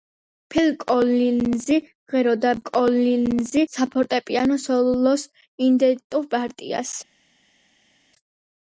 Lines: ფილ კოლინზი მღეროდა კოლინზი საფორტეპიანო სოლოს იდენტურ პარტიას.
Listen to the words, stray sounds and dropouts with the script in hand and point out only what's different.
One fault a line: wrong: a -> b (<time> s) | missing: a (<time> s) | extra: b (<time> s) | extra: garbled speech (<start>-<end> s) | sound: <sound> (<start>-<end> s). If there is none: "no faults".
no faults